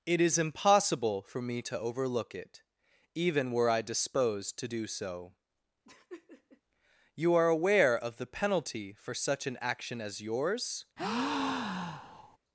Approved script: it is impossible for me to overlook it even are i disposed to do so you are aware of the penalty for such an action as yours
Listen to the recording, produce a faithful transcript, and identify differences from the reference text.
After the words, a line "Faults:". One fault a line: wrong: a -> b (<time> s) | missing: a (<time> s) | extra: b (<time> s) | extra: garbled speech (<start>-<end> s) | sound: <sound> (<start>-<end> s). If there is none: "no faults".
it is impossible for me to overlook it even were i disposed to do so you are aware of the penalty for such an action as yours
Faults:
wrong: are -> were (3.5 s)
sound: laugh (5.8-6.6 s)
sound: breath (11.0-12.4 s)